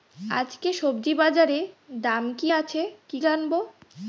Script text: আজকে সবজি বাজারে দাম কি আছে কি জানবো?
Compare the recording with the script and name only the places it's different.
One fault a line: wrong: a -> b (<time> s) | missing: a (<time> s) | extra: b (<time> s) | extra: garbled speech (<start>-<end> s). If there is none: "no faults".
no faults